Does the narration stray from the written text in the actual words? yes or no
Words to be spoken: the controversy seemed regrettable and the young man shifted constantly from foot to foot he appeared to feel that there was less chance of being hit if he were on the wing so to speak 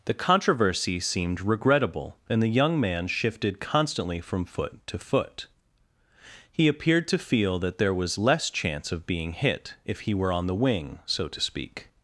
no